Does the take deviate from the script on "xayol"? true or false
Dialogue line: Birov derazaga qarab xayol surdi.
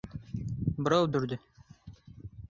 true